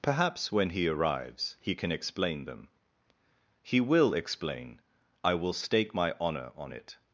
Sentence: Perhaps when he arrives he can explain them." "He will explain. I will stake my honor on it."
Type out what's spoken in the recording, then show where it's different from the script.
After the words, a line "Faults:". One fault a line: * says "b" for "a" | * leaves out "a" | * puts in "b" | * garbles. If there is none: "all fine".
Perhaps when he arrives he can explain them." "He will explain. I will stake my honor on it."
Faults:
all fine